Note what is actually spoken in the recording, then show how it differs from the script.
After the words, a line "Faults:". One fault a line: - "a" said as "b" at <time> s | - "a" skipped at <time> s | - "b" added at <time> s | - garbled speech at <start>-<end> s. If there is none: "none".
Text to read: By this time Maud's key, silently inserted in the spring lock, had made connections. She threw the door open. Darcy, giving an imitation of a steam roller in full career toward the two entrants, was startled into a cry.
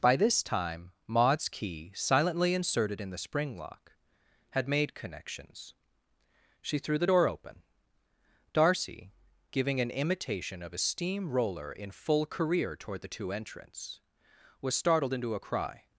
By this time Maud's key, silently inserted in the spring lock, had made connections. She threw the door open. Darcy, giving an imitation of a steam roller in full career toward the two entrants, was startled into a cry.
Faults:
none